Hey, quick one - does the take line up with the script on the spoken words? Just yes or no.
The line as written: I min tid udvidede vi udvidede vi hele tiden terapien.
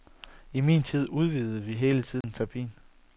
no